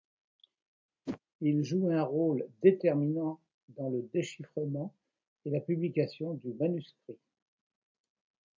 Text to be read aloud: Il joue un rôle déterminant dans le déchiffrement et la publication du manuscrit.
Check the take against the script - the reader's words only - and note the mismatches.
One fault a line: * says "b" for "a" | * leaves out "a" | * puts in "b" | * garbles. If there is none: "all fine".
all fine